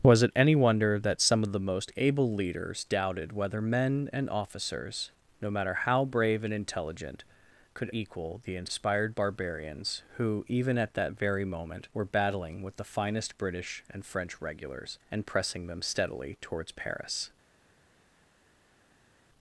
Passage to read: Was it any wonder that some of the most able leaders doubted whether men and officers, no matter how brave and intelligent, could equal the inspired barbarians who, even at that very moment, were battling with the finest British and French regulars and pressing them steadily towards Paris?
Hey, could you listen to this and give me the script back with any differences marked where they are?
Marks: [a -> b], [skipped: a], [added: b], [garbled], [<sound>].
Was it any wonder that some of the most able leaders doubted whether men and officers, no matter how brave and intelligent, could equal the inspired barbarians who, even at that very moment, were battling with the finest British and French regulars and pressing them steadily towards Paris?